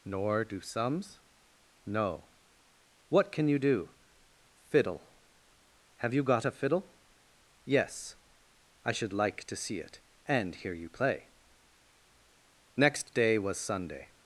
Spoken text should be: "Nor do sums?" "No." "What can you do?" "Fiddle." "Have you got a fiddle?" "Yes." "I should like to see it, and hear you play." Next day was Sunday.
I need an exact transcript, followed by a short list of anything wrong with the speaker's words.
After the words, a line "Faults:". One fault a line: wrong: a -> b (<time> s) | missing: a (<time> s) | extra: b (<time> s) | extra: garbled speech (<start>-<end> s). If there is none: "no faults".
"Nor do sums?" "No." "What can you do?" "Fiddle." "Have you got a fiddle?" "Yes." "I should like to see it, and hear you play." Next day was Sunday.
Faults:
no faults